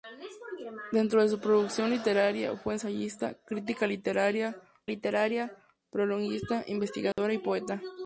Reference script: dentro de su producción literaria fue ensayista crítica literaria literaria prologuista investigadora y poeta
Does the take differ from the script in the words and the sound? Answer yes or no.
yes